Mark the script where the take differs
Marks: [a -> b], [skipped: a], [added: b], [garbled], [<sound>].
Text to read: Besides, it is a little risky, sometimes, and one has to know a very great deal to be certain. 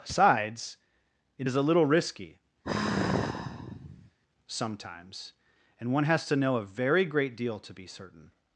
[Besides, -> Sides] it is a little risky, [sigh] sometimes, and one has to know a very great deal to be certain.